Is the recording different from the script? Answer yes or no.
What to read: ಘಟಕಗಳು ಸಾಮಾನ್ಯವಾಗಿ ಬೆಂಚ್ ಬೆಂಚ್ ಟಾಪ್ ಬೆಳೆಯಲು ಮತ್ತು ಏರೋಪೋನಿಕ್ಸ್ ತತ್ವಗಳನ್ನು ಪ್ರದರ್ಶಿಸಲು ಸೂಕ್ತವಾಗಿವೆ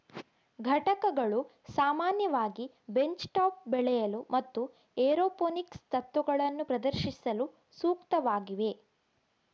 yes